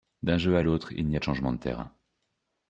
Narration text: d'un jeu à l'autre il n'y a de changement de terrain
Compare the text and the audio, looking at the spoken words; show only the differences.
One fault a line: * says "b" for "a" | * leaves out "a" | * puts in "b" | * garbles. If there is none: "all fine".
all fine